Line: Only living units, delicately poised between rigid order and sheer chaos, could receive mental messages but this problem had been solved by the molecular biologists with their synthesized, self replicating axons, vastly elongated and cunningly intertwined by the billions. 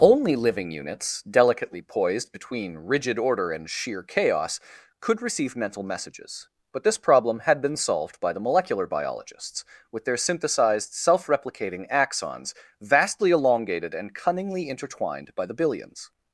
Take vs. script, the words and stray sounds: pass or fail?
pass